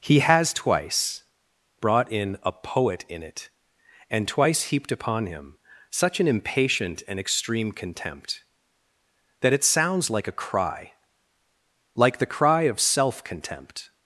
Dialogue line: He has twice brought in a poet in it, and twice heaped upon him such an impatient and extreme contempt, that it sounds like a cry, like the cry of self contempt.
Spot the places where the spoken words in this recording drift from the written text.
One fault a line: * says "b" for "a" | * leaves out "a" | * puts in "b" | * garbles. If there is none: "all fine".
all fine